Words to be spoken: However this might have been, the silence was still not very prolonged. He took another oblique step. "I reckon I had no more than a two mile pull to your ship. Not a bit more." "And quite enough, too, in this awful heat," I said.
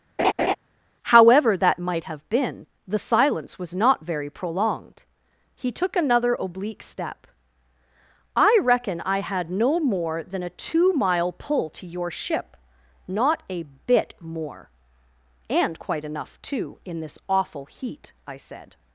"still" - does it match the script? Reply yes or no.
no